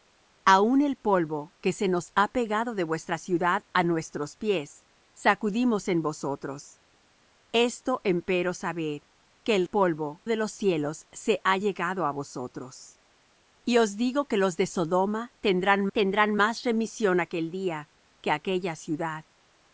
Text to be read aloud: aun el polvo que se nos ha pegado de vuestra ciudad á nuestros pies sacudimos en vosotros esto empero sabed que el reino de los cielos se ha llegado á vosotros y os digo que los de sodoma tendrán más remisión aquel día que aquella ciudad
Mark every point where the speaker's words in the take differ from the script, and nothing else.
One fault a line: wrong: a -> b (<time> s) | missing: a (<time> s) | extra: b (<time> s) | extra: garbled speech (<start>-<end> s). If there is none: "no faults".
wrong: reino -> polvo (9.6 s)
extra: tendrán (15.9 s)